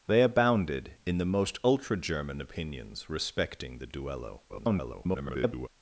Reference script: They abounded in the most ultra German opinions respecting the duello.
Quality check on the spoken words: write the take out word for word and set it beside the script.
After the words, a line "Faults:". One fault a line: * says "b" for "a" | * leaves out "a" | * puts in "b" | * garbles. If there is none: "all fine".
They abounded in the most ultra German opinions respecting the duello. [garbled]
Faults:
* garbles